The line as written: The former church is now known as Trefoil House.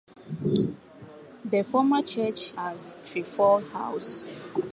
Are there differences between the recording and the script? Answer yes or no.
yes